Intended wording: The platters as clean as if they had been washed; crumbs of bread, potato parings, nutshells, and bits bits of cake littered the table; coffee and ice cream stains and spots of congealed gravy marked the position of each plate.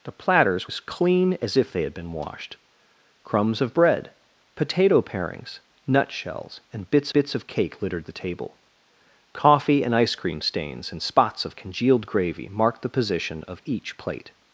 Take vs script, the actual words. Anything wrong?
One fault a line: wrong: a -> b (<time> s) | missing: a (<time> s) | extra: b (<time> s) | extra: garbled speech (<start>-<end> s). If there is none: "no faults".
no faults